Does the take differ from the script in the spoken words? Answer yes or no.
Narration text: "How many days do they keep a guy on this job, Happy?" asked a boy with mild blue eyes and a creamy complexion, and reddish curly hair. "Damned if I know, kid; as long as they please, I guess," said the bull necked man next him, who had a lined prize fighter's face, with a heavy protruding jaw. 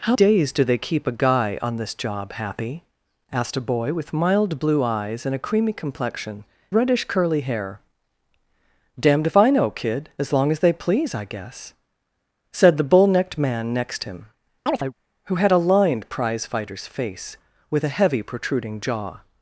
yes